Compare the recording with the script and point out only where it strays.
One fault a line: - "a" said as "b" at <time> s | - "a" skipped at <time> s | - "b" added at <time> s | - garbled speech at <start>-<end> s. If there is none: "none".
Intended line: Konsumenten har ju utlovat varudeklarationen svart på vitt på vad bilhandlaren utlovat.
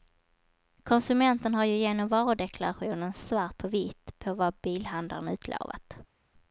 - "utlovat" said as "genom" at 1.8 s